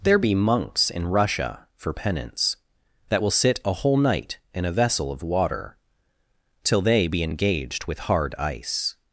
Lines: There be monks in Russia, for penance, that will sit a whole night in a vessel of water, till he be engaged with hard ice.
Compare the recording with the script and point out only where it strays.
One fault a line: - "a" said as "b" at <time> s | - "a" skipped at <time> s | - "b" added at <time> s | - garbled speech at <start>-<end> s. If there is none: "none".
- "he" said as "they" at 6.8 s